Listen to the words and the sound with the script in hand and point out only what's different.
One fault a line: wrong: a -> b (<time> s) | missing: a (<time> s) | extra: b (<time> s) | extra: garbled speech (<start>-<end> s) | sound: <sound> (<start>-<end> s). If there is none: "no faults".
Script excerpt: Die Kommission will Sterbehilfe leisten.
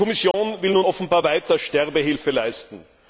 sound: dropout (0.3-0.3 s)
extra: nun offenbar weiter (0.7 s)